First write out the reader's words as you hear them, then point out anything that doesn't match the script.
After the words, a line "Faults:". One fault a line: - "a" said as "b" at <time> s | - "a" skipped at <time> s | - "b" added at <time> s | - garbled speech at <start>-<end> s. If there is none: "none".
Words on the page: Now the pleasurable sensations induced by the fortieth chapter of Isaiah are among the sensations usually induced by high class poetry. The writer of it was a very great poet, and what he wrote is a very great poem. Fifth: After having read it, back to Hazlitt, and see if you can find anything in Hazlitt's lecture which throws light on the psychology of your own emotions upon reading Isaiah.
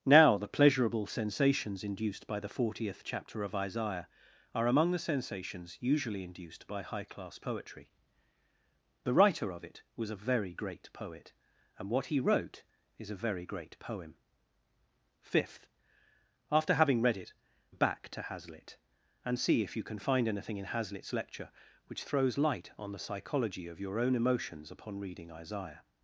Now the pleasurable sensations induced by the fortieth chapter of Isaiah are among the sensations usually induced by high class poetry. The writer of it was a very great poet, and what he wrote is a very great poem. Fifth: After having read it, back to Hazlitt, and see if you can find anything in Hazlitt's lecture which throws light on the psychology of your own emotions upon reading Isaiah.
Faults:
none